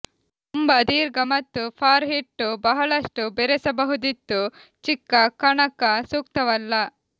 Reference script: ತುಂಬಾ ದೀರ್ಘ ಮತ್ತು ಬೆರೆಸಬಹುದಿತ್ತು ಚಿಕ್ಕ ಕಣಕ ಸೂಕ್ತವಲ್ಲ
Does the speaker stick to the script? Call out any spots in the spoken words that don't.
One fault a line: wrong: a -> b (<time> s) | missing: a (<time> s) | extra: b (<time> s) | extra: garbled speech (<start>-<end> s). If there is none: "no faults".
extra: ಫಾರ್ ಹಿಟ್ಟು ಬಹಳಷ್ಟು (1.8 s)